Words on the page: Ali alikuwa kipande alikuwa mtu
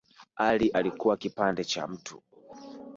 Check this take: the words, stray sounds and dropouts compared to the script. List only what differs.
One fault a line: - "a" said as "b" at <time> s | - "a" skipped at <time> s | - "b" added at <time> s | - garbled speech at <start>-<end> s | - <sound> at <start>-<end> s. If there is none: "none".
- "alikuwa" said as "cha" at 1.6 s